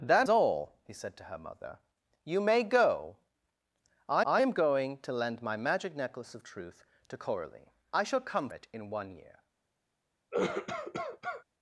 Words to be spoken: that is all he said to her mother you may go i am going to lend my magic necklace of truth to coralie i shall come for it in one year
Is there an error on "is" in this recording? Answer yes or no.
yes